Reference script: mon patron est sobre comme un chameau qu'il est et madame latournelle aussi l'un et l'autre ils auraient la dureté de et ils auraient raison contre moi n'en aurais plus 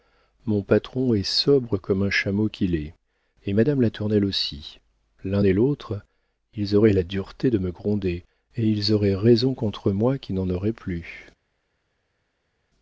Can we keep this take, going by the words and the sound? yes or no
no